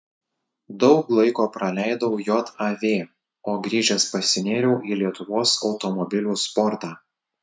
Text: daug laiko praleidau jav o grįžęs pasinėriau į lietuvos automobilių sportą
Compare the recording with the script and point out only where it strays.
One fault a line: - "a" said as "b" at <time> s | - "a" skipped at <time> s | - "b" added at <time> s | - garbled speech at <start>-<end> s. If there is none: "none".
none